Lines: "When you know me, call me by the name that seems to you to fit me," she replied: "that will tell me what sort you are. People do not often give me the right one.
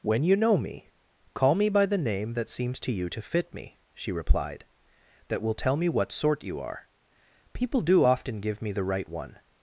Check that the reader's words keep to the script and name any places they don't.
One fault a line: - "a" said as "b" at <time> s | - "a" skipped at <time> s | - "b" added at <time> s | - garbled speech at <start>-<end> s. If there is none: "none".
- "not" skipped at 8.0 s